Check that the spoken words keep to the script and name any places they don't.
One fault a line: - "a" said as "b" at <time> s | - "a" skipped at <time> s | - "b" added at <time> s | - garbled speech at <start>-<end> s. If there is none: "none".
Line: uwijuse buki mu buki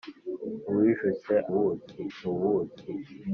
none